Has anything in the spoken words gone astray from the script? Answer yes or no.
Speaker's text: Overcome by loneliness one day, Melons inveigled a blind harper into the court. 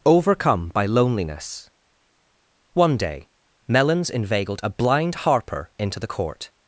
no